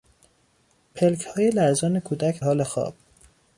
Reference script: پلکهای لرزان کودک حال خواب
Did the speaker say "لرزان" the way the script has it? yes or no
yes